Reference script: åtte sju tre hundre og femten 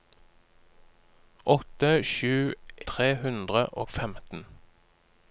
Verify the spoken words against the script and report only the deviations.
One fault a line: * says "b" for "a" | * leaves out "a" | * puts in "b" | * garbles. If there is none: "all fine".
all fine